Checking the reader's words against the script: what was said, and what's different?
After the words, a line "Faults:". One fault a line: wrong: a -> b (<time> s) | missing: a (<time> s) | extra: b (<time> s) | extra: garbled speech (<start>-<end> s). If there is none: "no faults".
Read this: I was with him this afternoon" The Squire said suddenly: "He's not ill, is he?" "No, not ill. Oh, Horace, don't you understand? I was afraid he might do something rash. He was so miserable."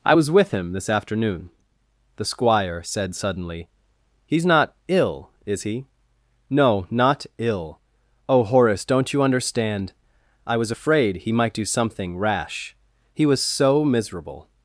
I was with him this afternoon" The Squire said suddenly: "He's not ill, is he?" "No, not ill. Oh, Horace, don't you understand? I was afraid he might do something rash. He was so miserable."
Faults:
no faults